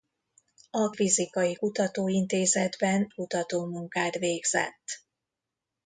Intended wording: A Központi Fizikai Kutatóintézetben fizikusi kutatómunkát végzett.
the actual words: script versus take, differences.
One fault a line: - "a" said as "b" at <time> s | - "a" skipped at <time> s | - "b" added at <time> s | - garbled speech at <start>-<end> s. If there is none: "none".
- "Központi" skipped at 0.9 s
- "fizikusi" skipped at 3.1 s